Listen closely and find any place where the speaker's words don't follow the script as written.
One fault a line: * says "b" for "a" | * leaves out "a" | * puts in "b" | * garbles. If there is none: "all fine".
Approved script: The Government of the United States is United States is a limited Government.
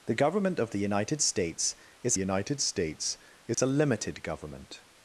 all fine